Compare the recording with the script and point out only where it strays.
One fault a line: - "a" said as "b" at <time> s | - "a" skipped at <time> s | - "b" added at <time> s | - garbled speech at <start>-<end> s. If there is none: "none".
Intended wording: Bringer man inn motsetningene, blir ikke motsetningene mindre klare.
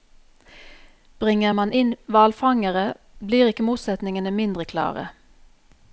- "motsetningene" said as "hvalfangere" at 2.1 s